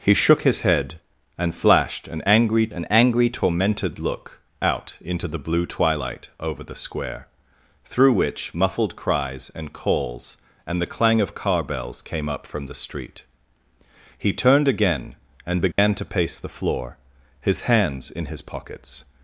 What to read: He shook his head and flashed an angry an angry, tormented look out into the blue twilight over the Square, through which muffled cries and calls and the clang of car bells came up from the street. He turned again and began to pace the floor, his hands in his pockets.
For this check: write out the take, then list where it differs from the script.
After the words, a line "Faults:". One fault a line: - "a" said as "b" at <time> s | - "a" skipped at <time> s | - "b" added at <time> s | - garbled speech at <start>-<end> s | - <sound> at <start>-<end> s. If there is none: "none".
He shook his head and flashed an angry an angry, tormented look out into the blue twilight over the Square, through which muffled cries and calls and the clang of car bells came up from the street. He turned again and began to pace the floor, his hands in his pockets.
Faults:
- dropout at 15.7-15.8 s